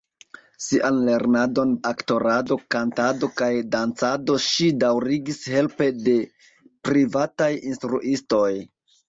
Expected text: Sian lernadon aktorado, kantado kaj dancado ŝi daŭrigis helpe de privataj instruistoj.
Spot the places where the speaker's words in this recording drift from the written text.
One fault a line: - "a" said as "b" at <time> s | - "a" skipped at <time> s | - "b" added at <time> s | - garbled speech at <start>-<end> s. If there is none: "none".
none